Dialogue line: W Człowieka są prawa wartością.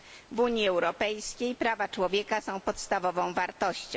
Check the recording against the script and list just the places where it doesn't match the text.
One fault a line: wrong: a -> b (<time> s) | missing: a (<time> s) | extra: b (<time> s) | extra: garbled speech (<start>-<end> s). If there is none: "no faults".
extra: Unii Europejskiej prawa (0.4 s)
wrong: prawa -> podstawową (2.6 s)